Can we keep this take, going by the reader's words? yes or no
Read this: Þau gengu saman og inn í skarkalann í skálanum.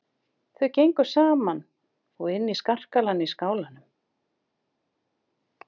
yes